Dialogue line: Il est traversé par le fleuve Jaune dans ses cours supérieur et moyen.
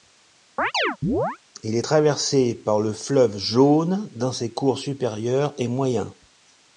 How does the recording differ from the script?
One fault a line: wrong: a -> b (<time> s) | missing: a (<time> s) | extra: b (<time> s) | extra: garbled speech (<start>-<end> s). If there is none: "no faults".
no faults